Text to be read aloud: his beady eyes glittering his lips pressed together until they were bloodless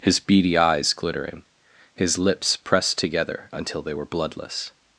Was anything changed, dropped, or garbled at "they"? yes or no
no